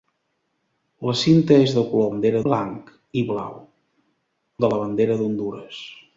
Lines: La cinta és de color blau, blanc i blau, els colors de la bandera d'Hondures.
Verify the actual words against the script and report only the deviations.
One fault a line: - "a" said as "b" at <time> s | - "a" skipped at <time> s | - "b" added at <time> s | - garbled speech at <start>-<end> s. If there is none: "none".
- "blau" said as "bandera" at 2.1 s
- "els colors" skipped at 3.6 s